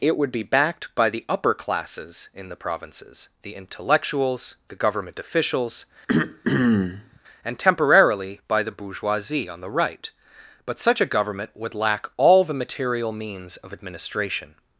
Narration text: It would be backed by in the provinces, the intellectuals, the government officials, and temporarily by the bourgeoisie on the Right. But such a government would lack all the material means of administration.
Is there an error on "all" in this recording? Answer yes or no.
no